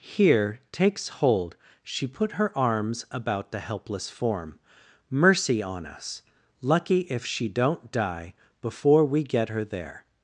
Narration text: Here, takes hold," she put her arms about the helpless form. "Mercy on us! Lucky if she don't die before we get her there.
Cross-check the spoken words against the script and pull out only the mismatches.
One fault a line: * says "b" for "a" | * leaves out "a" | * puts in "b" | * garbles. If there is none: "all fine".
all fine